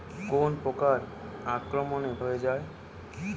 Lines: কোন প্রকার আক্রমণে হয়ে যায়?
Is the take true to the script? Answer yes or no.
yes